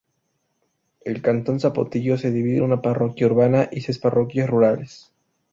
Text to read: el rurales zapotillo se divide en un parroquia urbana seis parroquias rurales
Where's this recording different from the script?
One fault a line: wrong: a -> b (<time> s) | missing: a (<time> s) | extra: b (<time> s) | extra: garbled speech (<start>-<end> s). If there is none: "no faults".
wrong: rurales -> cantón (1.2 s)
wrong: un -> una (2.6 s)
extra: y (3.7 s)